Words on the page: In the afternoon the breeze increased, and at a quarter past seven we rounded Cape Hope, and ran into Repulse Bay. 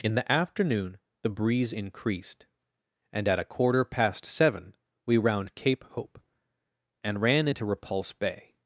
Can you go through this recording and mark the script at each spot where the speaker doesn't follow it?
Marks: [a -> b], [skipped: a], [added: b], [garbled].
In the afternoon the breeze increased, and at a quarter past seven we [rounded -> round] Cape Hope, and ran into Repulse Bay.